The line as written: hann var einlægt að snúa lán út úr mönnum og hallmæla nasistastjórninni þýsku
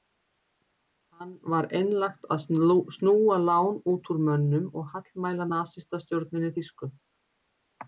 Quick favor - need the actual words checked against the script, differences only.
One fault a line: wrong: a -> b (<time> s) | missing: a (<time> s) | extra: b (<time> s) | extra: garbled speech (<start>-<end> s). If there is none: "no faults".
no faults